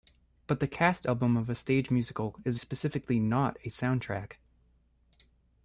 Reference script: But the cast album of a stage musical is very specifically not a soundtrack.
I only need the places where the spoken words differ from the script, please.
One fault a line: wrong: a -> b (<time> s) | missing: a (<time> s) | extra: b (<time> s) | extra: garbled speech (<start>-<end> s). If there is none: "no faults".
missing: very (2.6 s)